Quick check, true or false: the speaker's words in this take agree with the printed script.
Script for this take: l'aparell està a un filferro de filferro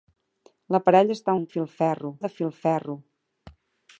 true